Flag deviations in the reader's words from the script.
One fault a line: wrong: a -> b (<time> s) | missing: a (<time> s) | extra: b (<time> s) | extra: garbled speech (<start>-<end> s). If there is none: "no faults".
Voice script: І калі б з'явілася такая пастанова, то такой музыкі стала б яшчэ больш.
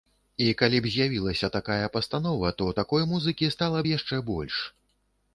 no faults